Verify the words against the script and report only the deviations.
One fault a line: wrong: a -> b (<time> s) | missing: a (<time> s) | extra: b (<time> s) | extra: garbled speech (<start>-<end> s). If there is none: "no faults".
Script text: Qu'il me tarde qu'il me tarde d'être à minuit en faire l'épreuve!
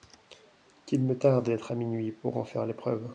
missing: qu'il me tarde (1.4 s)
extra: pour (2.1 s)